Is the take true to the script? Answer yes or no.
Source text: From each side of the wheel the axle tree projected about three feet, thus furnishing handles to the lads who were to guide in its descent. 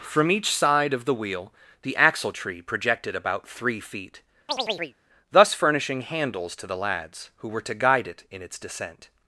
no